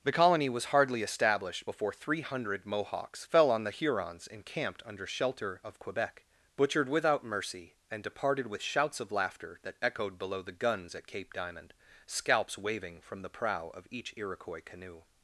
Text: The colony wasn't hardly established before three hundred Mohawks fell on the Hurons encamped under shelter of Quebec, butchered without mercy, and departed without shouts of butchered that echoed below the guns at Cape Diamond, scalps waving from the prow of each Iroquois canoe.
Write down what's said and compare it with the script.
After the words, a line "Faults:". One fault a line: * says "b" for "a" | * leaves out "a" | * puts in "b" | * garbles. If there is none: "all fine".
The colony was hardly established before three hundred Mohawks fell on the Hurons encamped under shelter of Quebec, butchered without mercy, and departed with shouts of laughter that echoed below the guns at Cape Diamond, scalps waving from the prow of each Iroquois canoe.
Faults:
* says "was" for "wasn't"
* says "with" for "without"
* says "laughter" for "butchered"